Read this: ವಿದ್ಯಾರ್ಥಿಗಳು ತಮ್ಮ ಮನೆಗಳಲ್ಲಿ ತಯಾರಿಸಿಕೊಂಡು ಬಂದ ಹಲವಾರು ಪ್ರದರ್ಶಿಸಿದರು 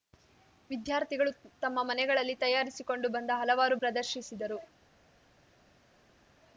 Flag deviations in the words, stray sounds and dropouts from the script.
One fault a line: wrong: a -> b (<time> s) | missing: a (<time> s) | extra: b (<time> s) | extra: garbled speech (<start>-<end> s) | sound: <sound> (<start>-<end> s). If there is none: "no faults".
no faults